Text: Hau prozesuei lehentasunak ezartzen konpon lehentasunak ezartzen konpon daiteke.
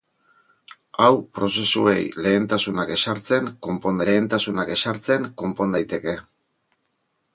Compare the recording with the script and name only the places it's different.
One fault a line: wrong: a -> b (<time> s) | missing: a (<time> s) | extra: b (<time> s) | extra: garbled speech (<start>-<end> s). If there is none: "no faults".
no faults